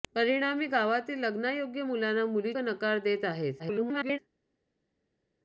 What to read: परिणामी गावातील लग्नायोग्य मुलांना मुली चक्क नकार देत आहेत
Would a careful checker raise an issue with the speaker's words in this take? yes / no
yes